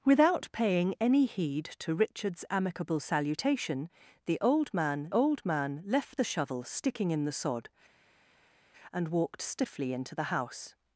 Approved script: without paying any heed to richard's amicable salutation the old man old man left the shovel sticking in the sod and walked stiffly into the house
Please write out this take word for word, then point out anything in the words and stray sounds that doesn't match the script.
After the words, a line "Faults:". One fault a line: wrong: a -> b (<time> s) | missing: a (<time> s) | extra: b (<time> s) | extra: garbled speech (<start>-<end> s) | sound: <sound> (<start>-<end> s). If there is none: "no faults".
without paying any heed to richard's amicable salutation the old man old man left the shovel sticking in the sod and walked stiffly into the house
Faults:
no faults